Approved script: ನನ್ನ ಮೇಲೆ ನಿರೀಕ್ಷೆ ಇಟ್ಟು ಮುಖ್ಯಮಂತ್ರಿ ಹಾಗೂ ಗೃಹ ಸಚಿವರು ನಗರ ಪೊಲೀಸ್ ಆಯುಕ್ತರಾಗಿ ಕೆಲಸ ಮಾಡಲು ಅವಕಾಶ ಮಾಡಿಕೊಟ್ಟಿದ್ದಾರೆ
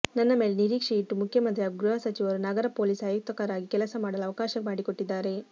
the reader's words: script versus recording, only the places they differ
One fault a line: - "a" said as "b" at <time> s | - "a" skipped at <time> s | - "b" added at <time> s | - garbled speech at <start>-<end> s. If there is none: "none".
none